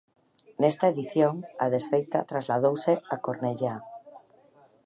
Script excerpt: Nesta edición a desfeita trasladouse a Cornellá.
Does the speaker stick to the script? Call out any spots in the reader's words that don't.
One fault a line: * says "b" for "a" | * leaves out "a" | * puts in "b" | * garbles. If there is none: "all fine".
all fine